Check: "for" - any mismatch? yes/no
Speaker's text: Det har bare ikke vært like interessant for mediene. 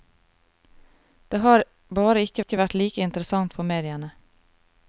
no